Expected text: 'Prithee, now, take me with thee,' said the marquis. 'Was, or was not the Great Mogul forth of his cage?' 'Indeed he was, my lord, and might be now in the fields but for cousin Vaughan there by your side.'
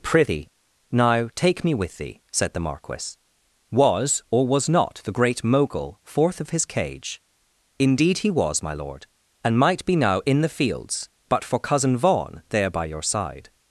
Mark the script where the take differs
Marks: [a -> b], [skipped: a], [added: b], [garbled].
'Prithee, now, take me with thee,' said the marquis. 'Was, or was not the Great Mogul forth of his cage?' 'Indeed he was, my lord, and might be now in the fields but for cousin Vaughan there by your side.'